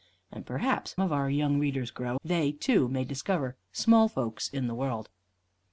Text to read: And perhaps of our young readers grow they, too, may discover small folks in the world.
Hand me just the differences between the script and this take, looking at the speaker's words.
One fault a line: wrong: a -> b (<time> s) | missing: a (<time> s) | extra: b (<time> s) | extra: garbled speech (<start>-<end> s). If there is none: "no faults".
no faults